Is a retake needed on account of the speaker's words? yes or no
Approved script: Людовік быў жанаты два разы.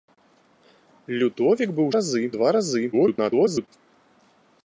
yes